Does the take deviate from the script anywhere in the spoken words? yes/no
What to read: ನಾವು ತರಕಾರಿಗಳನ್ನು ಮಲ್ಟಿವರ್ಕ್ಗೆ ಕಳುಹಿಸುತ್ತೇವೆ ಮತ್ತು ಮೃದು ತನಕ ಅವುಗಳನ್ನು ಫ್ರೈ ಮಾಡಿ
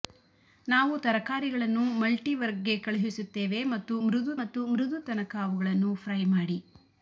yes